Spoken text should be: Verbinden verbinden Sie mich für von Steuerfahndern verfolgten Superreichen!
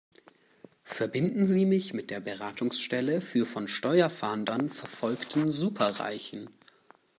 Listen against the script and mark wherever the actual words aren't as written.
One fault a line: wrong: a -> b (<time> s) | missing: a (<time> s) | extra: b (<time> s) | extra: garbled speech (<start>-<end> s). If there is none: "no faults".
missing: verbinden (1.4 s)
extra: mit der Beratungsstelle (1.9 s)